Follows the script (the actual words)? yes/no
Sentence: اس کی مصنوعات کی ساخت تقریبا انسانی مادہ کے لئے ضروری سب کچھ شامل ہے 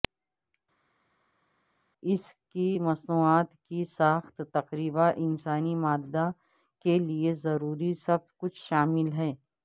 yes